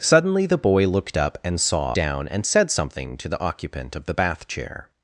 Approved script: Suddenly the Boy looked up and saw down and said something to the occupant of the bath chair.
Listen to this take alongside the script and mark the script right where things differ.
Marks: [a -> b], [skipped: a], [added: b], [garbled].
Suddenly the Boy looked up and saw down and said something to the occupant of the bath chair.